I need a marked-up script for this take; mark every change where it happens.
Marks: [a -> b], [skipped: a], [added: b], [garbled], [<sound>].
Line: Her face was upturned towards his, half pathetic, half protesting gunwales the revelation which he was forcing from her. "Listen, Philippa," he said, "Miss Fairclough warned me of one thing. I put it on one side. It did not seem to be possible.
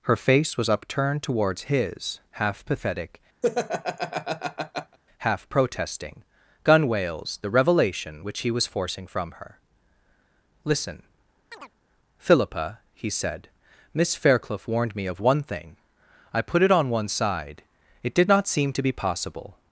Her face was upturned towards his, half pathetic, [laugh] half protesting gunwales the revelation which he was forcing from her. "Listen, [chirp] Philippa," he said, "Miss Fairclough warned me of one thing. I put it on one side. It did not seem to be possible.